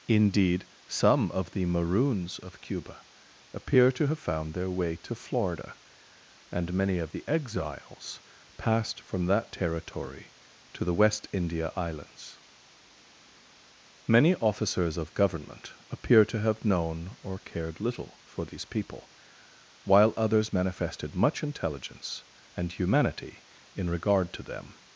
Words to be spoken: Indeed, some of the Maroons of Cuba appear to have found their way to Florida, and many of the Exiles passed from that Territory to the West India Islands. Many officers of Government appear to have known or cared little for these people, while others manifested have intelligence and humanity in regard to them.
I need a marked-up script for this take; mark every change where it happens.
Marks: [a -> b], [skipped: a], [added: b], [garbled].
Indeed, some of the Maroons of Cuba appear to have found their way to Florida, and many of the Exiles passed from that Territory to the West India Islands. Many officers of Government appear to have known or cared little for these people, while others manifested [have -> much] intelligence and humanity in regard to them.